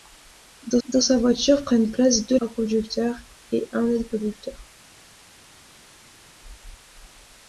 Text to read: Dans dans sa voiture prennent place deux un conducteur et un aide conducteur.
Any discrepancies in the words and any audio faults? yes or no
no